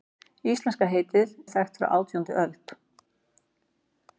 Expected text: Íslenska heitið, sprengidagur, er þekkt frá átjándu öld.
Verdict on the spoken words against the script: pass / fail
fail